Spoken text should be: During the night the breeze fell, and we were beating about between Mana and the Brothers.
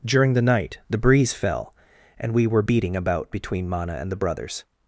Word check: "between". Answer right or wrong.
right